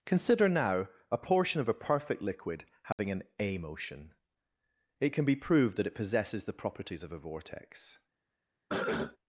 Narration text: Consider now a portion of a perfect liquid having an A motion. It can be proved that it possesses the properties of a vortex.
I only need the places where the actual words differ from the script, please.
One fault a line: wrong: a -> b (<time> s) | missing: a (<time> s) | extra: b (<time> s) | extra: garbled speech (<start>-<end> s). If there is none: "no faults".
no faults